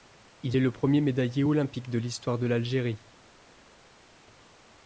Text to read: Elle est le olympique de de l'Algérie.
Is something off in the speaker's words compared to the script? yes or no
yes